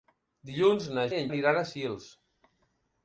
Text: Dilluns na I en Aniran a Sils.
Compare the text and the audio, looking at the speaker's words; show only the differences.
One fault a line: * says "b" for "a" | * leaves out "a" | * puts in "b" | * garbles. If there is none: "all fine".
all fine